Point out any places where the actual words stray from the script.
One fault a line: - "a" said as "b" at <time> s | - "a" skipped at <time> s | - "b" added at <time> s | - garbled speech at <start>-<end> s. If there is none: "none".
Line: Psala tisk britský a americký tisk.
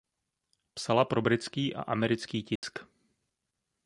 - "tisk" said as "pro" at 1.0 s